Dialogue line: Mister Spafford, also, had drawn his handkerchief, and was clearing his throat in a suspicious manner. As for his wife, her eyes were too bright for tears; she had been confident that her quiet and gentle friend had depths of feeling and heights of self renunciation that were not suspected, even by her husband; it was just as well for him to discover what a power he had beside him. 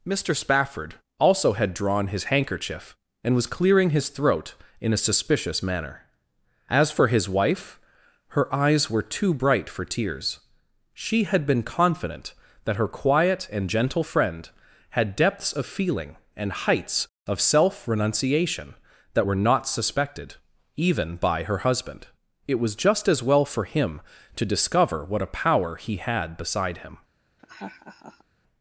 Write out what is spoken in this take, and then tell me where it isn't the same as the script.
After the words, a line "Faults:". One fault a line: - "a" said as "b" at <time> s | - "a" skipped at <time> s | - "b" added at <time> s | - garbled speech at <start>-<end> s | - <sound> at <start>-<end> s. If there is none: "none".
Mister Spafford, also, had drawn his handkerchief, and was clearing his throat in a suspicious manner. As for his wife, her eyes were too bright for tears; she had been confident that her quiet and gentle friend had depths of feeling and heights of self renunciation that were not suspected, even by her husband; it was just as well for him to discover what a power he had beside him.
Faults:
- laugh at 27.4-28.2 s